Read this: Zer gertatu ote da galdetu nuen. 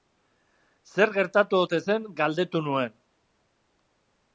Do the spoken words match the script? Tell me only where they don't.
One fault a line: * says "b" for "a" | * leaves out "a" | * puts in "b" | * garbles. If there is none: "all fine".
* says "zen" for "da"